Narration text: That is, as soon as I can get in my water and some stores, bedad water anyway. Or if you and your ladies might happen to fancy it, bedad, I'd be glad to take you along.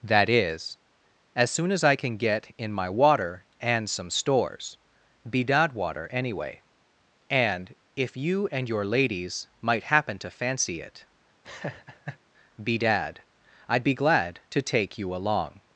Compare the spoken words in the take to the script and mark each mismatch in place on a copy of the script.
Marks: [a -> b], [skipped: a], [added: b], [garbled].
That is, as soon as I can get in my water and some stores, bedad water anyway. [Or -> And] if you and your ladies might happen to fancy it, bedad, I'd be glad to take you along.